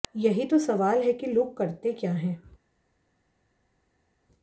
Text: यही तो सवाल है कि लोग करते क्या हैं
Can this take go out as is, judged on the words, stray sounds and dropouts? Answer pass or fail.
pass